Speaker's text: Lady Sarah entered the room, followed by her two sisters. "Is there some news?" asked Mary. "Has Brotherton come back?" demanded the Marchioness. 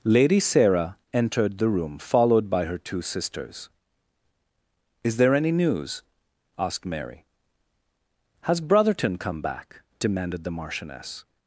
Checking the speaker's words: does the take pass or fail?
fail